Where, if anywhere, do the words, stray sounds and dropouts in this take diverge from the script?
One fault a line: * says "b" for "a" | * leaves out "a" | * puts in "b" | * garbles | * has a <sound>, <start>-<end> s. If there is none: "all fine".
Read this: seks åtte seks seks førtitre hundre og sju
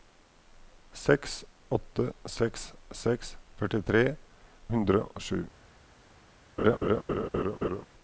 * has a laugh, 6.6-7.9 s